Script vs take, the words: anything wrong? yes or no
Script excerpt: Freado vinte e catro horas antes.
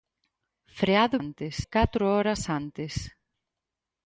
yes